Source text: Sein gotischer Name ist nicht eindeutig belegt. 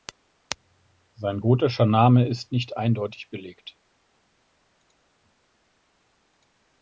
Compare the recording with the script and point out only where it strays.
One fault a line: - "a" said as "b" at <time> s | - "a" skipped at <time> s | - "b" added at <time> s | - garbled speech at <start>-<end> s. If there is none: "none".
none